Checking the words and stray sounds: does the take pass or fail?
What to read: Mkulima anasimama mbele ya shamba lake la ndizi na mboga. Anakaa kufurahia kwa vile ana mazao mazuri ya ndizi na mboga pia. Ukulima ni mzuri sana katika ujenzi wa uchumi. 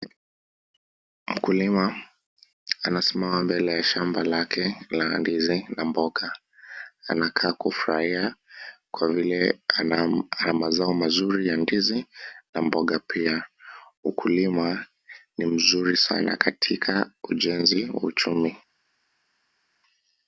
pass